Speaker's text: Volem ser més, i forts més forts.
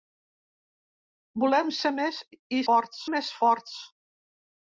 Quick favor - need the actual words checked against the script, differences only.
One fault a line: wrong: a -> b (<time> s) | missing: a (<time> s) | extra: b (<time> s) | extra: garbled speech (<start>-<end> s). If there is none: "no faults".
no faults